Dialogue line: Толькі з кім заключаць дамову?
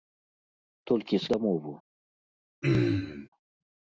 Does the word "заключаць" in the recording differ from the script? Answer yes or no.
yes